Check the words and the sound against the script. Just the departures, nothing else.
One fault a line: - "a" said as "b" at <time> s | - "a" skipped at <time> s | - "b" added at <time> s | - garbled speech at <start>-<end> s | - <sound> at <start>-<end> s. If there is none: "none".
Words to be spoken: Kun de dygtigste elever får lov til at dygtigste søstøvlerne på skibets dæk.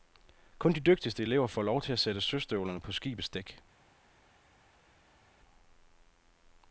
- "dygtigste" said as "sætte" at 2.0 s